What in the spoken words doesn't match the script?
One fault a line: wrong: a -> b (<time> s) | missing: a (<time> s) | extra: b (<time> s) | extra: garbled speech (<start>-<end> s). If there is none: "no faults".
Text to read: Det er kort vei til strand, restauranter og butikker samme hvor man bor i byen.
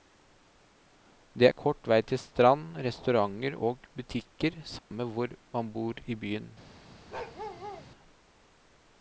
no faults